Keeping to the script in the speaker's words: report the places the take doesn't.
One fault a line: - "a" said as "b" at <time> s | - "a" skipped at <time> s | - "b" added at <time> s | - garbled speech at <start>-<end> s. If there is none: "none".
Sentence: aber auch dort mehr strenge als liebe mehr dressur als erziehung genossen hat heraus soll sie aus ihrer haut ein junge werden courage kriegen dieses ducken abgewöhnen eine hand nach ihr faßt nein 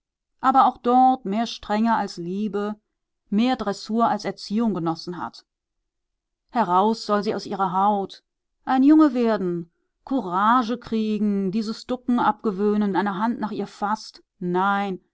none